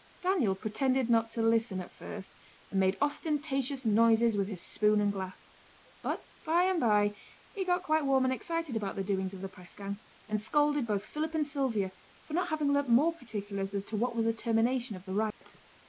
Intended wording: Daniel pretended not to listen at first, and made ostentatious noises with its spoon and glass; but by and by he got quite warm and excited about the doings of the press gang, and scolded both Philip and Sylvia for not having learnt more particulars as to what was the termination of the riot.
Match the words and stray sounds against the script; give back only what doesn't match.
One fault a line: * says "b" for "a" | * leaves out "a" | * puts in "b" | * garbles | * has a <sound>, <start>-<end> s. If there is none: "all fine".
* says "his" for "its"
* has a dropout, 15.3-15.4 s